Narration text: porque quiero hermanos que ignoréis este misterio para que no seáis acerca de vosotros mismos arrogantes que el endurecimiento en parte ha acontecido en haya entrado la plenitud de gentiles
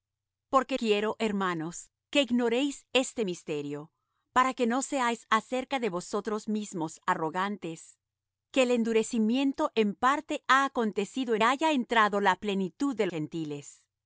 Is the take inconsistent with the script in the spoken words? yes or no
no